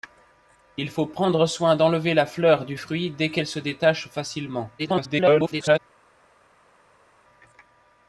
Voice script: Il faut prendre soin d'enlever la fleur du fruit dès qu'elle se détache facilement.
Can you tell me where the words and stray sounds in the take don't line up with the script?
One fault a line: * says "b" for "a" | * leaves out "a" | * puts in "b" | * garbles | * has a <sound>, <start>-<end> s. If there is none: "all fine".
* garbles